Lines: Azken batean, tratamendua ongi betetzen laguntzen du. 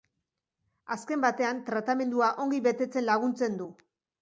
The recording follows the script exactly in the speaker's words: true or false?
true